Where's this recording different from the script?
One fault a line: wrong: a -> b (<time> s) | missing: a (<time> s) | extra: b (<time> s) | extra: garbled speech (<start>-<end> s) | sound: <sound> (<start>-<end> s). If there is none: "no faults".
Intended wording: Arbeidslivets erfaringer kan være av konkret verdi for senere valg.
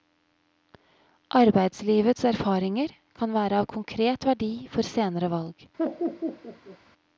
sound: laugh (5.8-6.8 s)